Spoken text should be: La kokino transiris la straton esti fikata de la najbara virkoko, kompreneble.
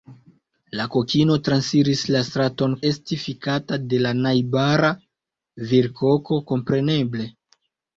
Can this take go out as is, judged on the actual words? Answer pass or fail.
pass